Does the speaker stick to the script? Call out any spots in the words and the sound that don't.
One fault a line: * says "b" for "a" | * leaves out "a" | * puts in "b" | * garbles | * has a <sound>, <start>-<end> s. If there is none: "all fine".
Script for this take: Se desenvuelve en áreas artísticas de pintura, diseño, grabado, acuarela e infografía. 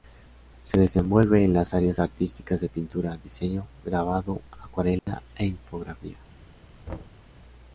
* puts in "las"
* has a dropout, 5.0-5.1 s
* has a thud, 6.9-7.2 s